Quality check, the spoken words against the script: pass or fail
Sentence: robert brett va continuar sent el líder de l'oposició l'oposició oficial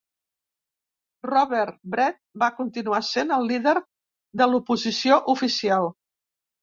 fail